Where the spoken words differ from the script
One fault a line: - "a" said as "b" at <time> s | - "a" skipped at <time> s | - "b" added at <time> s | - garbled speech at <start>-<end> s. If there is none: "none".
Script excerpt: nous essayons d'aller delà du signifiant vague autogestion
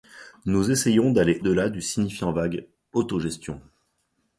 none